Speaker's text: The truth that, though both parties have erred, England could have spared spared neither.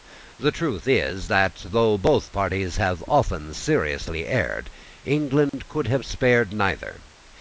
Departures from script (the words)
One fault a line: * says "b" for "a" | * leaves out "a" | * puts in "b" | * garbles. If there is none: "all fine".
* puts in "is"
* puts in "often seriously"
* leaves out "spared"